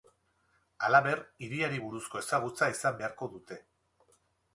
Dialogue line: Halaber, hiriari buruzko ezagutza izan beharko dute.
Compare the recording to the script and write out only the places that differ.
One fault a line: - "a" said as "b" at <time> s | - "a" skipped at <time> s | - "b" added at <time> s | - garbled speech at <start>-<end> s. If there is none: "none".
none